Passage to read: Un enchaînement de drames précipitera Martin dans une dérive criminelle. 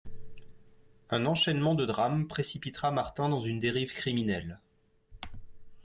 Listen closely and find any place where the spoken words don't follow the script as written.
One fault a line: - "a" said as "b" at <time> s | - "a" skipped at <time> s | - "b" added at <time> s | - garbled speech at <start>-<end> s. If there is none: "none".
none